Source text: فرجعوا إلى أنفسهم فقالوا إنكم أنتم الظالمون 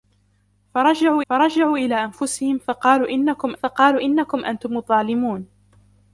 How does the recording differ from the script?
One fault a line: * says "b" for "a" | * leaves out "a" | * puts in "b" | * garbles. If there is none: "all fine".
* puts in "فرجعوا"
* puts in "فقالوا إنكم"